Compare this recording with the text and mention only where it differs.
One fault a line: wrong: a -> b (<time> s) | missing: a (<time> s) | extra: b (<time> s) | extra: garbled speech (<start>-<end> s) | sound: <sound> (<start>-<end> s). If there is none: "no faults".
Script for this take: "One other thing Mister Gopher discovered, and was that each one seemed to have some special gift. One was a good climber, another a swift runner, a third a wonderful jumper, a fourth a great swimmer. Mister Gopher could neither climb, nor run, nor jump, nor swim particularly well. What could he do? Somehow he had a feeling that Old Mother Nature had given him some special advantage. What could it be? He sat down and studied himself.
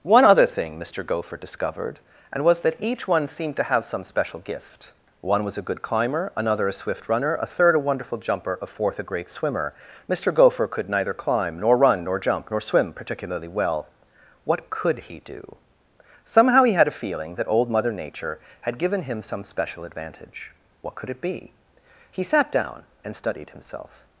no faults